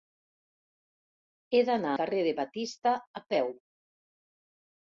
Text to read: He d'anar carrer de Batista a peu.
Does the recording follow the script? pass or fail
pass